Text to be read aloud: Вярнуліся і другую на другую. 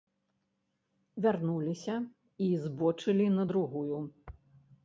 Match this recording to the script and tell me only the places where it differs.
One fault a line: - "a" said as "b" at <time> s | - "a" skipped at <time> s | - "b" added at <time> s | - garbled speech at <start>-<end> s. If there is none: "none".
- "другую" said as "збочылі" at 2.6 s